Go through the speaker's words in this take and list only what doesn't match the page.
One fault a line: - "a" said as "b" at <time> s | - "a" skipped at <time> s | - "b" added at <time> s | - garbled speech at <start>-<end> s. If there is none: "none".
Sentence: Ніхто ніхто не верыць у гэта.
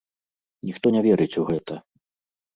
- "ніхто" skipped at 0.9 s